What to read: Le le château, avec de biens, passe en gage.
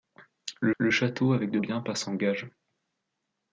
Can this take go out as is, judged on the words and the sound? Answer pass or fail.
pass